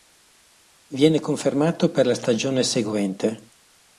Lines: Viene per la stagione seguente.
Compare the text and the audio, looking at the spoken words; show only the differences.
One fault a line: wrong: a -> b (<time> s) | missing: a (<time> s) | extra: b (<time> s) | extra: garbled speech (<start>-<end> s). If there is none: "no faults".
extra: confermato (1.2 s)